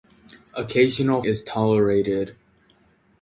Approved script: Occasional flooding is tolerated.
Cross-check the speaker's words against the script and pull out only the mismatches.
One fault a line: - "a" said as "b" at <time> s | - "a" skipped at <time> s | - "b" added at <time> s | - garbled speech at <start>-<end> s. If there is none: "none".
- "flooding" skipped at 1.2 s